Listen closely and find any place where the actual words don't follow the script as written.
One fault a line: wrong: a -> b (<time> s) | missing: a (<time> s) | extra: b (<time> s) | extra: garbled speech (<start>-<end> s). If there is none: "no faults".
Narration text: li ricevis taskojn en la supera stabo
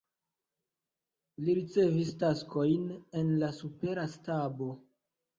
no faults